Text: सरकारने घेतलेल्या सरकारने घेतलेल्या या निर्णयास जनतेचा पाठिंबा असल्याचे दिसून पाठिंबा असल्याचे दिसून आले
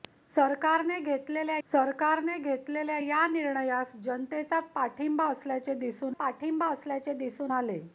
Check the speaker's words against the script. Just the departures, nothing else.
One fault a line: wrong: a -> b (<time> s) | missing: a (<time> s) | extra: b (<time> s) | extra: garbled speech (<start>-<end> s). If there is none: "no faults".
no faults